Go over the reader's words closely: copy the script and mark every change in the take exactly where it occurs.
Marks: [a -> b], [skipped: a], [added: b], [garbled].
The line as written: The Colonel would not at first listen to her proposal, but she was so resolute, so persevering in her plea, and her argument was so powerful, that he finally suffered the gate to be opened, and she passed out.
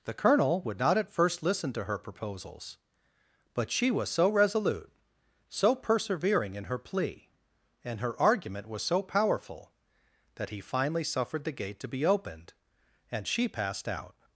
The Colonel would not at first listen to her [proposal, -> proposals] but she was so resolute, so persevering in her plea, and her argument was so powerful, that he finally suffered the gate to be opened, and she passed out.